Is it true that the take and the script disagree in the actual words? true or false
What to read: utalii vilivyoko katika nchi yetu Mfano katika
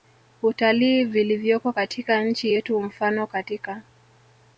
false